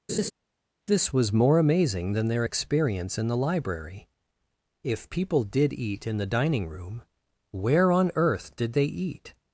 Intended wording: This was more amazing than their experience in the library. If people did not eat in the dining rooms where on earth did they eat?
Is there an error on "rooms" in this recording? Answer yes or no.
yes